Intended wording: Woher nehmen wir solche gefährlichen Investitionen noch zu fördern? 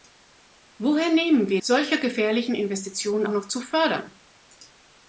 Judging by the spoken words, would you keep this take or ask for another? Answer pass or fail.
pass